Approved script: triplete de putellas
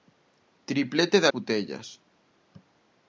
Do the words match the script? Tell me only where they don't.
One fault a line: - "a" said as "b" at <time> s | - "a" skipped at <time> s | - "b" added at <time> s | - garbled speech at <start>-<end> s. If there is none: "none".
none